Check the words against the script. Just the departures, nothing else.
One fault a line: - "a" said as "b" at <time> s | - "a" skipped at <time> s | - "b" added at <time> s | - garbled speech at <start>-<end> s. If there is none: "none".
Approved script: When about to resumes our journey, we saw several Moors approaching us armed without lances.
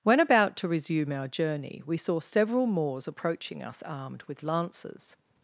- "resumes" said as "resume" at 0.7 s
- "without" said as "with" at 4.2 s